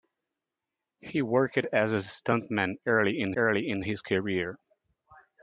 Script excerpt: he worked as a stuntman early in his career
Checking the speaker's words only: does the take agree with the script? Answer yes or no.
no